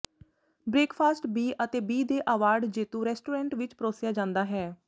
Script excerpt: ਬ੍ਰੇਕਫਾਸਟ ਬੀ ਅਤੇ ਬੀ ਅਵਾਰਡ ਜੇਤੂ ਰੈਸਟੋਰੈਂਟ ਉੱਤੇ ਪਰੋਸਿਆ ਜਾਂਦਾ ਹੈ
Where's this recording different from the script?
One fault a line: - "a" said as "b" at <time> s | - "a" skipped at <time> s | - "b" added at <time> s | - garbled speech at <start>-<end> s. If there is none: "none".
- "ਦੇ" added at 2.0 s
- "ਉੱਤੇ" said as "ਵਿੱਚ" at 3.5 s